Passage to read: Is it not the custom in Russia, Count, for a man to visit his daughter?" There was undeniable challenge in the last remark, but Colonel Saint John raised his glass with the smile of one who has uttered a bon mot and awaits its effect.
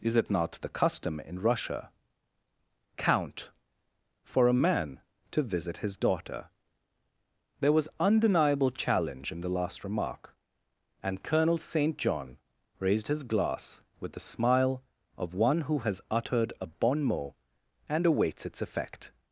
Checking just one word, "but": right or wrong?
wrong